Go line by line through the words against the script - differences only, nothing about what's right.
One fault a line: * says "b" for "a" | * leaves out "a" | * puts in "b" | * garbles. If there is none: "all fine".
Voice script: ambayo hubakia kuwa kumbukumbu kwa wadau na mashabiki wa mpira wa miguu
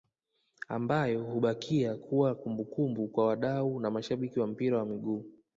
all fine